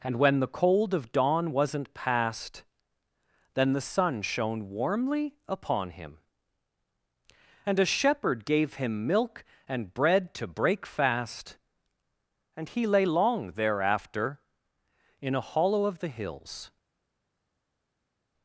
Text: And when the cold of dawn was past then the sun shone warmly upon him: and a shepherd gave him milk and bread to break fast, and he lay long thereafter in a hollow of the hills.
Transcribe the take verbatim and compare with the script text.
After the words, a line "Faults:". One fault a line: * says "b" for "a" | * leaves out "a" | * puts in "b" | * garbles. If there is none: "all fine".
And when the cold of dawn wasn't past then the sun shone warmly upon him: and a shepherd gave him milk and bread to break fast, and he lay long thereafter in a hollow of the hills.
Faults:
* says "wasn't" for "was"